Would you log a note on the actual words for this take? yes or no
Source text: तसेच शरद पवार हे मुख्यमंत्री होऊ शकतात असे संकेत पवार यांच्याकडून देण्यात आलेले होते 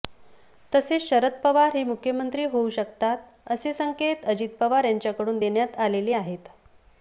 yes